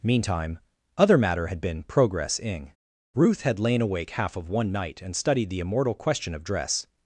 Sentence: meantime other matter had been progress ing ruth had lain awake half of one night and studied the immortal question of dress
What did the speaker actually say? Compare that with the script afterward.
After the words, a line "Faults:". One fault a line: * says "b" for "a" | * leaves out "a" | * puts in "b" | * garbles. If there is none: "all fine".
meantime other matter had been progress ing ruth had lain awake half of one night and studied the immortal question of dress
Faults:
all fine